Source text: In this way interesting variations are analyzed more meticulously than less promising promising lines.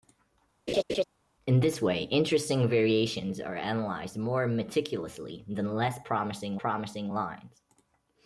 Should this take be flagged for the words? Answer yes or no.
no